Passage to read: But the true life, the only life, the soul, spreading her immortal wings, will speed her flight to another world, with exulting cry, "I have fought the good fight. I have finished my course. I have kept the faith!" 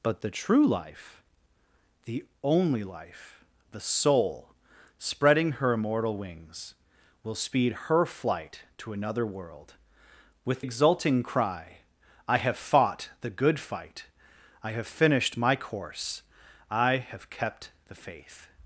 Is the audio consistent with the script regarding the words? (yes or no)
yes